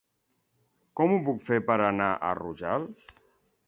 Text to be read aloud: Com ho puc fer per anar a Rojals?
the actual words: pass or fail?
pass